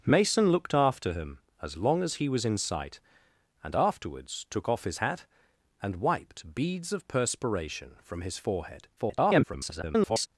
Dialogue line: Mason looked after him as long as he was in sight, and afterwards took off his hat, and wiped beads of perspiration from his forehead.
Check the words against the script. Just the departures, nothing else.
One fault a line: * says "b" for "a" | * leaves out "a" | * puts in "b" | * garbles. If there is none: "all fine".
* garbles